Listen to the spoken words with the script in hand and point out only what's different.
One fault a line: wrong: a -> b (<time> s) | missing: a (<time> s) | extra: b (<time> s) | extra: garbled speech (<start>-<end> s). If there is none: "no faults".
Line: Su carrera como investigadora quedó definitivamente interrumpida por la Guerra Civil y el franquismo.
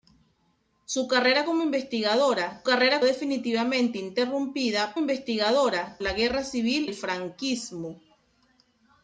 wrong: quedó -> carrera (2.6 s)
wrong: por -> investigadora (5.0 s)
missing: y (6.9 s)